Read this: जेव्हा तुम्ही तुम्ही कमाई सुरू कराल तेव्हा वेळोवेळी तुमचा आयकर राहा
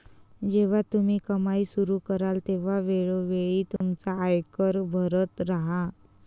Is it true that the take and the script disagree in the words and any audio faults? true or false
true